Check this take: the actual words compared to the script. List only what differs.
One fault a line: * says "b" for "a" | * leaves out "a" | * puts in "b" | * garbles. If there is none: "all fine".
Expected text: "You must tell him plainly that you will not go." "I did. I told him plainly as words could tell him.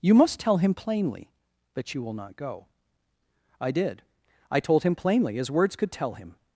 all fine